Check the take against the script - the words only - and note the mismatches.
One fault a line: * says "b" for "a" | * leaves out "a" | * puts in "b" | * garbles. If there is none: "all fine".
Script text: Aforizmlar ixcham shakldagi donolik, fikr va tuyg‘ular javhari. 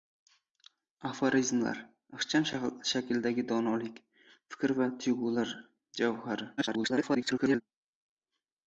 * garbles